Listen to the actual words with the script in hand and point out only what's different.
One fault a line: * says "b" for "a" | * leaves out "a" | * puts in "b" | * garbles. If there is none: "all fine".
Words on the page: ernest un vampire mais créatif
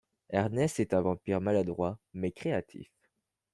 * puts in "est"
* puts in "maladroit"